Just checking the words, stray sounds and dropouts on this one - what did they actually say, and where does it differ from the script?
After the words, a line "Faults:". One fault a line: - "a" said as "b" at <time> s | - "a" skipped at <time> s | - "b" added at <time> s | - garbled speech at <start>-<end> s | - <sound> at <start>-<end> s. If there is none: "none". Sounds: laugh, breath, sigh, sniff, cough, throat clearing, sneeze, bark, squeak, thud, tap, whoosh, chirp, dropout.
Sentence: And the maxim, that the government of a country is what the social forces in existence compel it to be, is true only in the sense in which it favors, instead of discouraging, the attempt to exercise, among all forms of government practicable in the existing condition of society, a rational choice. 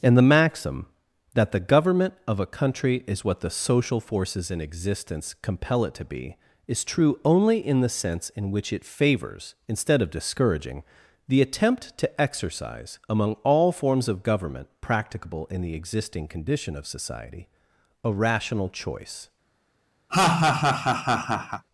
And the maxim, that the government of a country is what the social forces in existence compel it to be, is true only in the sense in which it favors, instead of discouraging, the attempt to exercise, among all forms of government practicable in the existing condition of society, a rational choice.
Faults:
- laugh at 20.1-21.6 s